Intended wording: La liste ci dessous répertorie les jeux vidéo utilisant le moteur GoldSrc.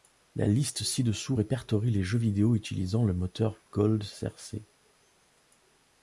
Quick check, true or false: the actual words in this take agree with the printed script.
true